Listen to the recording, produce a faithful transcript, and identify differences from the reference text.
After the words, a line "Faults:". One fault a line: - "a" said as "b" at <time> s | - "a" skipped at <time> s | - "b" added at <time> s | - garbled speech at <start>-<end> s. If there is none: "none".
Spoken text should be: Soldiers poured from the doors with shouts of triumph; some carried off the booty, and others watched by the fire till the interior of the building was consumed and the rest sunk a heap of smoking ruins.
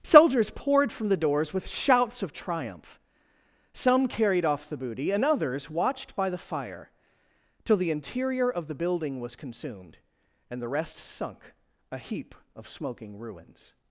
Soldiers poured from the doors with shouts of triumph; some carried off the booty, and others watched by the fire till the interior of the building was consumed and the rest sunk a heap of smoking ruins.
Faults:
none